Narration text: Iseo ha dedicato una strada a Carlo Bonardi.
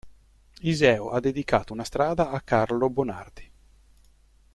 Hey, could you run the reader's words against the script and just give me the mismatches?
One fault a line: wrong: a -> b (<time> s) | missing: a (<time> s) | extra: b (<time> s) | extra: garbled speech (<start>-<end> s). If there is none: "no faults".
no faults